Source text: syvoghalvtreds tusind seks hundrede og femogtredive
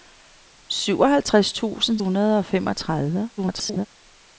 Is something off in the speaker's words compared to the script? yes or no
yes